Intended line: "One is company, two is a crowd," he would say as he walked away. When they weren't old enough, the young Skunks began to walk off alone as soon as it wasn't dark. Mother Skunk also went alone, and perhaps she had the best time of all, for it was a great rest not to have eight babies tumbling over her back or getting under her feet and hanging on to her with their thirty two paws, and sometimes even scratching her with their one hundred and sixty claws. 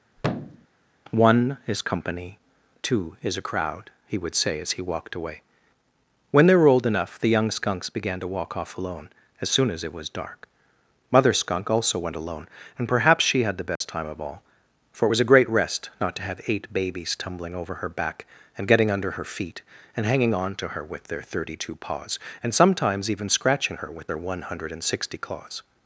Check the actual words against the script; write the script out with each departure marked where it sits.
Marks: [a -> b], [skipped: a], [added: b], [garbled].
"One is company, two is a crowd," he would say as he walked away. When they [weren't -> were] old enough, the young Skunks began to walk off alone as soon as it [wasn't -> was] dark. Mother Skunk also went alone, and perhaps she had the best time of all, for it was a great rest not to have eight babies tumbling over her back [or -> and] getting under her feet and hanging on to her with their thirty two paws, and sometimes even scratching her with their one hundred and sixty claws.